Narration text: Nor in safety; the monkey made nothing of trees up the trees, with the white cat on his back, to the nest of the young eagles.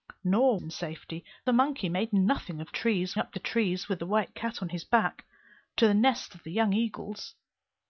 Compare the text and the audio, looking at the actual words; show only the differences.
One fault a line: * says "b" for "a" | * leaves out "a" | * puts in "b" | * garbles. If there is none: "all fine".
all fine